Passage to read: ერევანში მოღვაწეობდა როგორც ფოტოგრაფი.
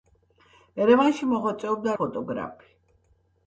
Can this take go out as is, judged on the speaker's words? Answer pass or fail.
fail